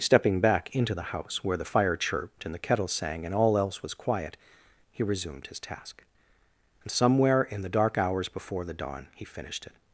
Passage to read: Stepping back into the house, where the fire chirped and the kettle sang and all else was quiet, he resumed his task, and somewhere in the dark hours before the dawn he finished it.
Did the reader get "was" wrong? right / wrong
right